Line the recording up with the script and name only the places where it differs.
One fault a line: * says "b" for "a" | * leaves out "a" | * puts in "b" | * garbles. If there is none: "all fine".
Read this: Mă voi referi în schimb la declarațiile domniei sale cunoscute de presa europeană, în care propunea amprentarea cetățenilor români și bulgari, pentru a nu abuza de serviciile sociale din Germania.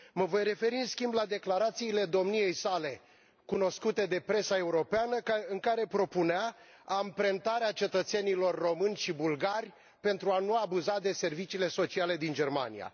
all fine